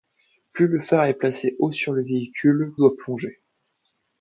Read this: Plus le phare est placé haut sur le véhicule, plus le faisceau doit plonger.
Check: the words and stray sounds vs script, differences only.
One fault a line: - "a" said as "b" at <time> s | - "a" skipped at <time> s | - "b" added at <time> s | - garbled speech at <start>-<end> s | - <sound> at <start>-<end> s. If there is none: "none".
- "plus le faisceau" skipped at 2.7 s